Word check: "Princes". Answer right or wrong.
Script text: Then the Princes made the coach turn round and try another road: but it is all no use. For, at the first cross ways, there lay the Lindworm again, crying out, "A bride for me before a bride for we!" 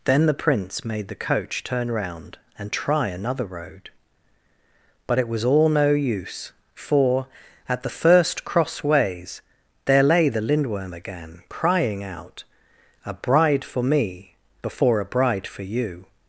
wrong